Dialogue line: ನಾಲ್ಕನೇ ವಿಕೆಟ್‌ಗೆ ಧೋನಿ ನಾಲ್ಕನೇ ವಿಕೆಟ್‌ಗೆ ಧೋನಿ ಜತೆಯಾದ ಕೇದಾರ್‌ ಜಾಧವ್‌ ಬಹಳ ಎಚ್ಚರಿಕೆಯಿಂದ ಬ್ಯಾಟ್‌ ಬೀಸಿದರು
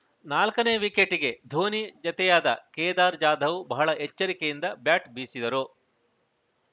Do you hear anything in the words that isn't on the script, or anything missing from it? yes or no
yes